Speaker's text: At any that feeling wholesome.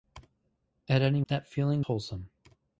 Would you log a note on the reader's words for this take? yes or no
no